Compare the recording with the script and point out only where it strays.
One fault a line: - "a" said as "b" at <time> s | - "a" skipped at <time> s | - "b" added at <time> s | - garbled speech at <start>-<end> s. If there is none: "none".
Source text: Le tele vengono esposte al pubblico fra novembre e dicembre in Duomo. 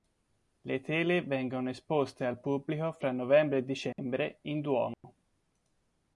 none